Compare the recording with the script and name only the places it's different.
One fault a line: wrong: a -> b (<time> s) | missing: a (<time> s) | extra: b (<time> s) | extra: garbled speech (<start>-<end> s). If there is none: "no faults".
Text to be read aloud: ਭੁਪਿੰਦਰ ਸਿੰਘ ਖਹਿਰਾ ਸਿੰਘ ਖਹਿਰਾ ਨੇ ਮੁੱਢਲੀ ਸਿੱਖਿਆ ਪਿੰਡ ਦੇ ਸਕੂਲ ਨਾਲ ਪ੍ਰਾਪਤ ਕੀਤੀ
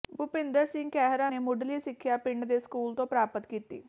missing: ਸਿੰਘ ਖਹਿਰਾ (1.3 s)
wrong: ਨਾਲ -> ਤੋਂ (3.0 s)